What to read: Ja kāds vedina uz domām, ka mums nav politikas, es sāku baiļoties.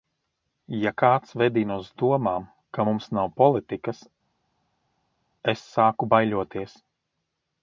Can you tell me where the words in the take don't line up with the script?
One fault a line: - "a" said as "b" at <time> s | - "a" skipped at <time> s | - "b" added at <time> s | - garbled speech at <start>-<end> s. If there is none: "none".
none